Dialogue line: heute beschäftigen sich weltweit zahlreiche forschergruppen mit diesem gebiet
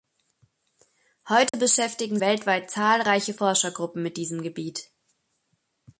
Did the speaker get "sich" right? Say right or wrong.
wrong